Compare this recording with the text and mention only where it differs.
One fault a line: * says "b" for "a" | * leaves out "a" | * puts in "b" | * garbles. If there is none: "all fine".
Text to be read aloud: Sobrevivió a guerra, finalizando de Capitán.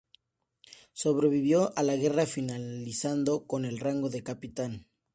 * puts in "la"
* puts in "con el rango"